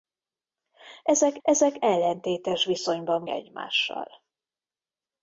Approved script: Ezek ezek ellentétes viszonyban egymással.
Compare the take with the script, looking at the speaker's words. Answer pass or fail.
pass